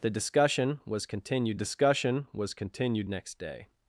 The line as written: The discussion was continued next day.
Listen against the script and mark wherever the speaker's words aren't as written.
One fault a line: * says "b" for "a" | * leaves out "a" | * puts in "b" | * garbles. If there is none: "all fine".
* puts in "discussion was continued"